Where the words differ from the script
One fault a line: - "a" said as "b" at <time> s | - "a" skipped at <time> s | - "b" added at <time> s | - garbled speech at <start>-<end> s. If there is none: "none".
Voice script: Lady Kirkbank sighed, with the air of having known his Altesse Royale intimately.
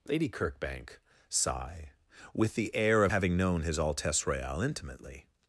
- "sighed" said as "sigh" at 1.3 s